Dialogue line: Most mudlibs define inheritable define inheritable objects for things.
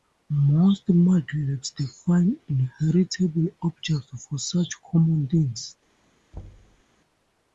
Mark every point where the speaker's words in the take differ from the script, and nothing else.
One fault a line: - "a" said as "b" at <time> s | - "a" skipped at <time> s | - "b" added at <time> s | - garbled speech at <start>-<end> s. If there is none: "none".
- "define inheritable objects for" said as "objects for such common" at 3.6 s